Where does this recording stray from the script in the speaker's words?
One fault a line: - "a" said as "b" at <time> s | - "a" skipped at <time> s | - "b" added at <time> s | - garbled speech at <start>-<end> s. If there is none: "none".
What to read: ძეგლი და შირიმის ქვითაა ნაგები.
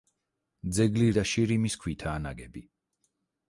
none